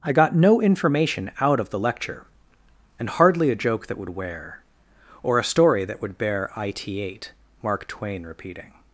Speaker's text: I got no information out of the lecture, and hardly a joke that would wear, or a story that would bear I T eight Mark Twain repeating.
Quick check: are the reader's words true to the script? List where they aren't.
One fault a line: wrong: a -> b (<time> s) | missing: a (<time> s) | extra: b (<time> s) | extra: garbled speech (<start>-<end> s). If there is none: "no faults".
no faults